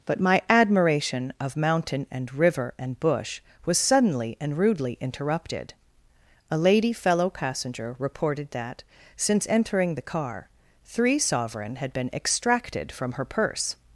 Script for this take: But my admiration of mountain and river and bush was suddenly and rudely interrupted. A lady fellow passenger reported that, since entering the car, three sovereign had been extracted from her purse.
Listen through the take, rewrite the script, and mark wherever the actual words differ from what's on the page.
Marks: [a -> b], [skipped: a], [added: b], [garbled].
But my admiration of mountain and river and bush was suddenly and rudely interrupted. A lady fellow passenger reported that, since entering the car, three sovereign had been extracted from her purse.